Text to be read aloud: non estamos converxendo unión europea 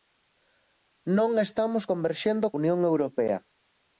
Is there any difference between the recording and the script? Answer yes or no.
no